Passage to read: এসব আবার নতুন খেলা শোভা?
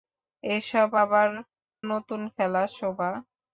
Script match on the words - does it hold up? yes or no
yes